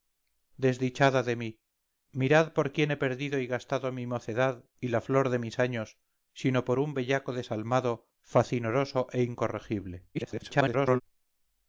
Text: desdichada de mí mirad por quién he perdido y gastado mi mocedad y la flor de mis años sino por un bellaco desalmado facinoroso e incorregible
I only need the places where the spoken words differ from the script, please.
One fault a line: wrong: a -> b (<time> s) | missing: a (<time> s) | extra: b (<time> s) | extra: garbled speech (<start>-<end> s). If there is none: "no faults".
extra: garbled speech (10.1-11.0 s)